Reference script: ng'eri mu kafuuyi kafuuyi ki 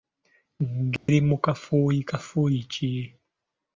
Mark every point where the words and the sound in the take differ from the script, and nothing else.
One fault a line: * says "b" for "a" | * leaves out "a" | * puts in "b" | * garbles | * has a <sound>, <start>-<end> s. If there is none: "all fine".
* has a dropout, 1.0-1.1 s